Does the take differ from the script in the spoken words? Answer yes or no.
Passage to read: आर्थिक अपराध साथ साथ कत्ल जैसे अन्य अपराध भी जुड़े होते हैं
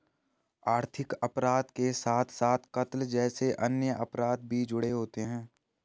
yes